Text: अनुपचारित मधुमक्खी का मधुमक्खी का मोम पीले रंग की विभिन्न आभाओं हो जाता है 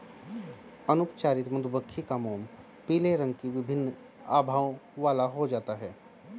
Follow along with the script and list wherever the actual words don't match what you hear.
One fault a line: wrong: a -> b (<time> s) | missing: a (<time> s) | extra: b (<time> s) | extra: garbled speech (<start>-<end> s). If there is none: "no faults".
missing: मधुमक्खी का (2.2 s)
extra: वाला (5.0 s)